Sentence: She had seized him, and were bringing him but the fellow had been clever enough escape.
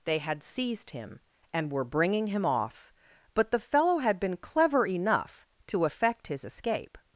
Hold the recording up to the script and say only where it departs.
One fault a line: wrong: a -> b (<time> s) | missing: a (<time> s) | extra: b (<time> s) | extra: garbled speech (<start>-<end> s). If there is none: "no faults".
wrong: She -> They (0.1 s)
extra: off (2.5 s)
extra: to effect his (5.7 s)